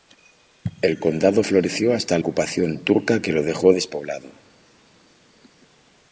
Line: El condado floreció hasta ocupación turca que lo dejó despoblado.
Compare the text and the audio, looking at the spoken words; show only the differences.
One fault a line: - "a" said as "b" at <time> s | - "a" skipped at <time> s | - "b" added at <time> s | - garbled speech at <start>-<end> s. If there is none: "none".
none